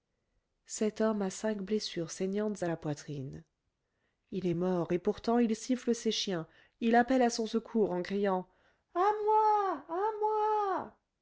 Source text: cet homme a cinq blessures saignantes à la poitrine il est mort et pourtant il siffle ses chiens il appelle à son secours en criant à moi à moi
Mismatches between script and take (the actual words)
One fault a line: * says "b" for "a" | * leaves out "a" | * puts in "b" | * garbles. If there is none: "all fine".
all fine